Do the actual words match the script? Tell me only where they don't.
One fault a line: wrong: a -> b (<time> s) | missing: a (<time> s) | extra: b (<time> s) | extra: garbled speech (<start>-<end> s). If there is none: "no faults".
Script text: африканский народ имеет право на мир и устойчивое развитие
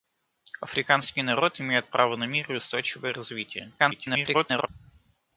extra: garbled speech (3.8-4.7 s)